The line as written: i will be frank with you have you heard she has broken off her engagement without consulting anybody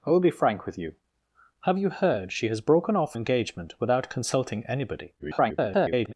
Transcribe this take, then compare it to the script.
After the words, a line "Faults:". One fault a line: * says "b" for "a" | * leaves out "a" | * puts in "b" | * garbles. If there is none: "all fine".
i will be frank with you have you heard she has broken off engagement without consulting anybody [garbled]
Faults:
* leaves out "her"
* garbles